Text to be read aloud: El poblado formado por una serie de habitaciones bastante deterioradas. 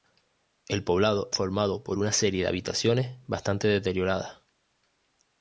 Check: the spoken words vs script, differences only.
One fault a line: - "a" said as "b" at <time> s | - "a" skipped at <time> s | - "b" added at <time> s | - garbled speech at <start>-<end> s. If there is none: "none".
none